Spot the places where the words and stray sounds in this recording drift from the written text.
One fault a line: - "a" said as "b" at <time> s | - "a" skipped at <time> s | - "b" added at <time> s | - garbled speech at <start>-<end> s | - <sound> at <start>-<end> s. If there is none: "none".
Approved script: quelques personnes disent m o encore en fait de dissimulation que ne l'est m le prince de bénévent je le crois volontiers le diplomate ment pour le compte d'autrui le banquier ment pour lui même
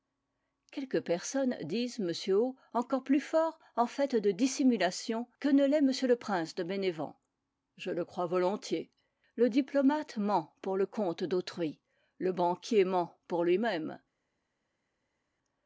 - "plus fort" added at 3.0 s